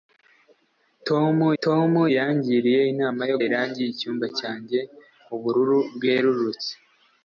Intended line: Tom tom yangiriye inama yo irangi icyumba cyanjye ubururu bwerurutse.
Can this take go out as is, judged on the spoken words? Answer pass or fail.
pass